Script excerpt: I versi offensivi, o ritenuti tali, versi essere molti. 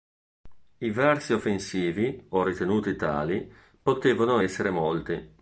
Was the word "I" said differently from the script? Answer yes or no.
no